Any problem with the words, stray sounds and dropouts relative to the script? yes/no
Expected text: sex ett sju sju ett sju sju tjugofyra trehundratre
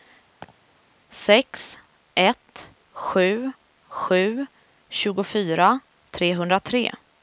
yes